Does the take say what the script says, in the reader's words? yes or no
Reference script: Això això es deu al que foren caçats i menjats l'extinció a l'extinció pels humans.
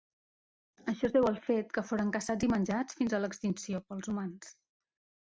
no